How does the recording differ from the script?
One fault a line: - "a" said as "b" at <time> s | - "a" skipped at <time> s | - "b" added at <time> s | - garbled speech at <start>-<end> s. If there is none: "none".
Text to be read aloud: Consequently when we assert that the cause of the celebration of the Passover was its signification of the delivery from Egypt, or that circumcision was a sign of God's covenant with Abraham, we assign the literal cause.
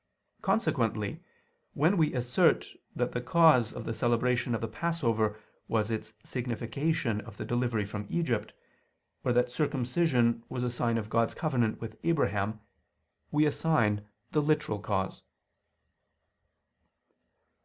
none